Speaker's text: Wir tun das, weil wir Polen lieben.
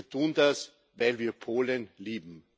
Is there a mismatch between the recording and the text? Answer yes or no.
no